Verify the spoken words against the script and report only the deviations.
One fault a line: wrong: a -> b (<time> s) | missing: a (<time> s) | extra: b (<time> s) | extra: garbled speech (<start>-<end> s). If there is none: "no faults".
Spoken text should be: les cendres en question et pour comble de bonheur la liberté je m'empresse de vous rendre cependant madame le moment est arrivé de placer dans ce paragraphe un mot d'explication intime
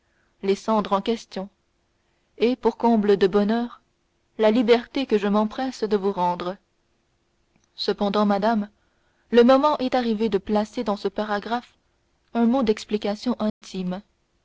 extra: que (5.0 s)